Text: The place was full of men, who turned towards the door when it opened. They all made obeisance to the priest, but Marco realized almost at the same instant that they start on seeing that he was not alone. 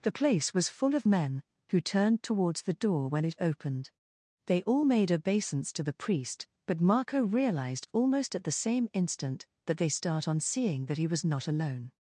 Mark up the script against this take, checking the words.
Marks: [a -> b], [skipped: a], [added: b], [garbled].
The place was full of men, who turned towards the door when it opened. They all made obeisance to the priest, but Marco realized almost at the same instant that they start on seeing that he was not alone.